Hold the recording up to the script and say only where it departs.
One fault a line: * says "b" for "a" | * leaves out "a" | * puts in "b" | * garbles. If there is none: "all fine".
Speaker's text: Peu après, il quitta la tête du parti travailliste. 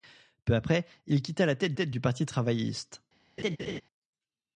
* puts in "tête"